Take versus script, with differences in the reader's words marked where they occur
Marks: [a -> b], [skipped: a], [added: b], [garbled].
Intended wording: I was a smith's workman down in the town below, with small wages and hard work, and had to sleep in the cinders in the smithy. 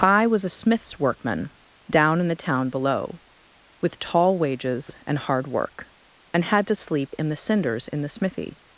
I was a smith's workman down in the town below, with [small -> tall] wages and hard work, and had to sleep in the cinders in the smithy.